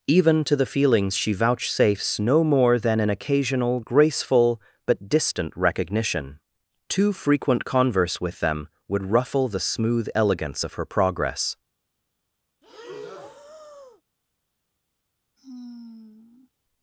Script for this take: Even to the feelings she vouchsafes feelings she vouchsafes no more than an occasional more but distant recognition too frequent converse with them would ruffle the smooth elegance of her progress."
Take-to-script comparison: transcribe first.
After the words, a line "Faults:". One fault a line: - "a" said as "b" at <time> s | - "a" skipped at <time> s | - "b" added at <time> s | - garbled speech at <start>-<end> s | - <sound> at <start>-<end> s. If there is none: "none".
Even to the feelings she vouchsafes no more than an occasional graceful but distant recognition too frequent converse with them would ruffle the smooth elegance of her progress."
Faults:
- "feelings she vouchsafes" skipped at 2.2 s
- "more" said as "graceful" at 3.8 s
- breath at 12.6-14.0 s
- sigh at 15.4-16.5 s